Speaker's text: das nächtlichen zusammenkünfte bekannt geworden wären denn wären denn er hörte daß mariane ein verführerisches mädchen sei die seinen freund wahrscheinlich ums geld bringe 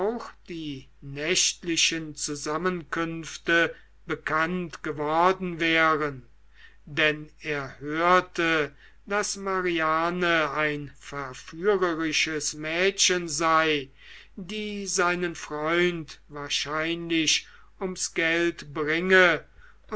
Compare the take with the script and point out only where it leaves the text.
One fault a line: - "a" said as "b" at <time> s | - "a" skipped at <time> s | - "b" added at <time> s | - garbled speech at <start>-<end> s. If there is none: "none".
- "das" said as "die" at 0.5 s
- "wären denn" skipped at 7.3 s